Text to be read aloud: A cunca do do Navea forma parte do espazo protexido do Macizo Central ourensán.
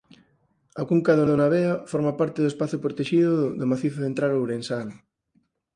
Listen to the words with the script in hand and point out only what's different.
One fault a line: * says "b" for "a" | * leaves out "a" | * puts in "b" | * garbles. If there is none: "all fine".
all fine